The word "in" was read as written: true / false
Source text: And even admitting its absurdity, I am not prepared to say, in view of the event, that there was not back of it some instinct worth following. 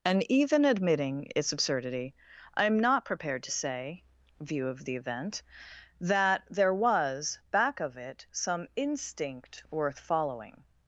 false